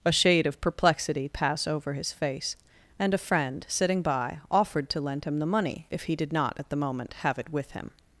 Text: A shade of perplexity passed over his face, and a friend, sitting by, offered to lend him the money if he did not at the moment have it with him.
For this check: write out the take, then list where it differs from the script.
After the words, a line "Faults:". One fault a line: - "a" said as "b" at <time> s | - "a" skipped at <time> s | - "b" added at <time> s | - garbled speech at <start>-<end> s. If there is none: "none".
A shade of perplexity pass over his face, and a friend, sitting by, offered to lend him the money if he did not at the moment have it with him.
Faults:
- "passed" said as "pass" at 1.3 s